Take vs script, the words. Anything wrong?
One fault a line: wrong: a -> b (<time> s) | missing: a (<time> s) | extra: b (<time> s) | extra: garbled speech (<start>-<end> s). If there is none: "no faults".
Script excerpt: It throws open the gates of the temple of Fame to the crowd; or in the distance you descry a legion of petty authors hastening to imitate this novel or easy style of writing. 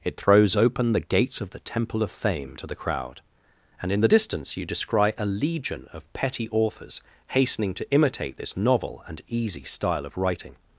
wrong: or -> and (3.8 s)
wrong: or -> and (9.1 s)